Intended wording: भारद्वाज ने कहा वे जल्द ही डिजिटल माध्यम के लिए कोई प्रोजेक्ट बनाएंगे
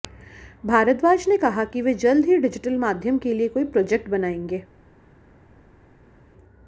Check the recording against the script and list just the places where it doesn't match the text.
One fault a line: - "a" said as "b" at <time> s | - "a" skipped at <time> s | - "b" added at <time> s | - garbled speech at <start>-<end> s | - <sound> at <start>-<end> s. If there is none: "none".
- "कि" added at 1.6 s